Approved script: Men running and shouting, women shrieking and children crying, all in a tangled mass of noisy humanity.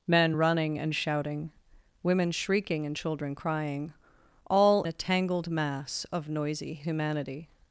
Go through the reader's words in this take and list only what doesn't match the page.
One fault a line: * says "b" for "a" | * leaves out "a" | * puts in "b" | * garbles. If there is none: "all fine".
* leaves out "in"